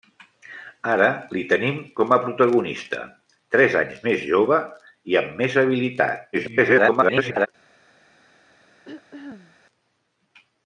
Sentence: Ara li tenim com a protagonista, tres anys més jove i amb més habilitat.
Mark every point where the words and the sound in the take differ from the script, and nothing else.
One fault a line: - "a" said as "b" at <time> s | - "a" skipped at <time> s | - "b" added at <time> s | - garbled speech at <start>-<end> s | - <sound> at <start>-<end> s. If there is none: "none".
- garbled speech at 6.3-7.5 s
- throat clearing at 8.8-9.6 s